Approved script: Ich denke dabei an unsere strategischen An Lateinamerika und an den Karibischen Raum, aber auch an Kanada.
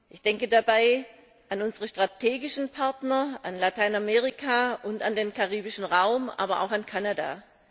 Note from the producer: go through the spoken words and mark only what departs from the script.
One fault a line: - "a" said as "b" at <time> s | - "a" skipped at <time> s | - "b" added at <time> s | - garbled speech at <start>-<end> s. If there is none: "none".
- "Partner" added at 2.7 s